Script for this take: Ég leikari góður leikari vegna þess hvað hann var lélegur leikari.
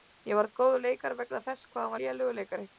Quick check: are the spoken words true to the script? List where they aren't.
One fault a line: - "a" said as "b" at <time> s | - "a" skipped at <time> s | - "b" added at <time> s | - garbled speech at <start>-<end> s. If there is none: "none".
- "leikari" said as "varð" at 0.4 s